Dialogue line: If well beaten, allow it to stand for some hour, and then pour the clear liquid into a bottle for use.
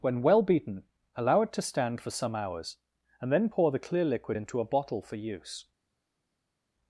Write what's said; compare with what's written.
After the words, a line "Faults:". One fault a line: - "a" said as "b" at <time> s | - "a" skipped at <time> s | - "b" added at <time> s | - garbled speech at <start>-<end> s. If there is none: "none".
When well beaten, allow it to stand for some hours, and then pour the clear liquid into a bottle for use.
Faults:
- "If" said as "When" at 0.0 s
- "hour" said as "hours" at 2.3 s